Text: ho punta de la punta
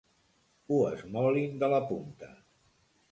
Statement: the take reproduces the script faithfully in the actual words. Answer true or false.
false